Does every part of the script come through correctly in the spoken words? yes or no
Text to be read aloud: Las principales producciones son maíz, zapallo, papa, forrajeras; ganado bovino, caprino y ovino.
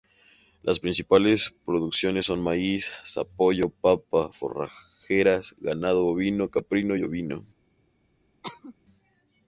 yes